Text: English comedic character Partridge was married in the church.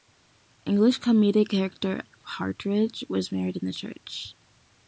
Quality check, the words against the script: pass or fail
pass